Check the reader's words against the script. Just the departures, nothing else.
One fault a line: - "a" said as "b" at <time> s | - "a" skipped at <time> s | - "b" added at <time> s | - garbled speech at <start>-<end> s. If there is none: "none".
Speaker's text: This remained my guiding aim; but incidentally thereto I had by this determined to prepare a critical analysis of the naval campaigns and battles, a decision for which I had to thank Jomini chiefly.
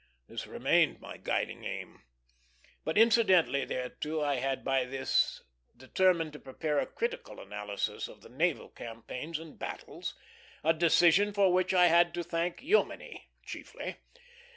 none